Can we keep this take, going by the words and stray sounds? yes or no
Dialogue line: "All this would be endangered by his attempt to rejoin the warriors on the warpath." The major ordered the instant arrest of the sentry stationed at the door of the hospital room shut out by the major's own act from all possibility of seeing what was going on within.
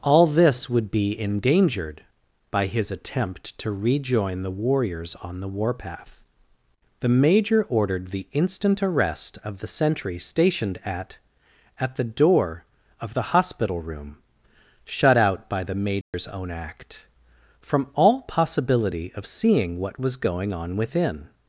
no